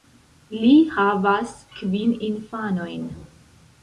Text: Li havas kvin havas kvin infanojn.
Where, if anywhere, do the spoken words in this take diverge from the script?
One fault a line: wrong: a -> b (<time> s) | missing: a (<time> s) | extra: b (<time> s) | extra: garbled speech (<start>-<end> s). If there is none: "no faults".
missing: havas kvin (2.1 s)